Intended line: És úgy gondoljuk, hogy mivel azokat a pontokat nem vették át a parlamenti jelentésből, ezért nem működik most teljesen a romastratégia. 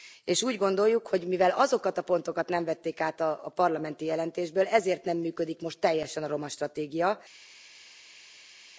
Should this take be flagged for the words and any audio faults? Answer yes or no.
no